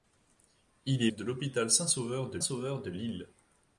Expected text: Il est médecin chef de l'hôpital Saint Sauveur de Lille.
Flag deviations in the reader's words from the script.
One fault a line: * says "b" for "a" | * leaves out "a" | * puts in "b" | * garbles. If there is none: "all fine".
* leaves out "médecin chef"
* puts in "Sauveur de"